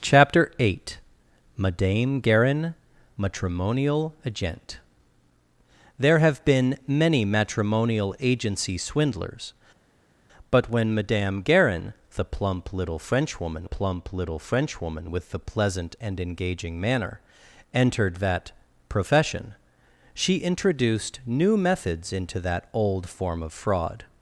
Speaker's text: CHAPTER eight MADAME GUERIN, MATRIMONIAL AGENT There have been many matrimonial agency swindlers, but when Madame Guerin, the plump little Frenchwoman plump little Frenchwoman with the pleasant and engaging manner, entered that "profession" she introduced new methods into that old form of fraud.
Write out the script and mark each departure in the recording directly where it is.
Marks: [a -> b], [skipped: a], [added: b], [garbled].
CHAPTER eight MADAME GUERIN, MATRIMONIAL AGENT There have been many matrimonial agency swindlers, but when Madame Guerin, the plump little Frenchwoman plump little Frenchwoman with the pleasant and engaging manner, entered that "profession" she introduced new methods into that old form of fraud.